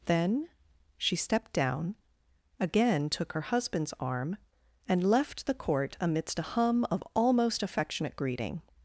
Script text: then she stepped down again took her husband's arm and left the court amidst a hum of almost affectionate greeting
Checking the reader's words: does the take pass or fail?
pass